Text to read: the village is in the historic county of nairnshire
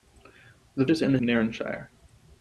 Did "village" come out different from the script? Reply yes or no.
yes